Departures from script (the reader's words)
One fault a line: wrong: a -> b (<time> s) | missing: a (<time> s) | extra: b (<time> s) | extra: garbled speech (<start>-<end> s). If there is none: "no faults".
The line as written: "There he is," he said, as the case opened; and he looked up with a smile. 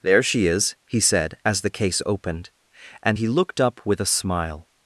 wrong: he -> she (0.2 s)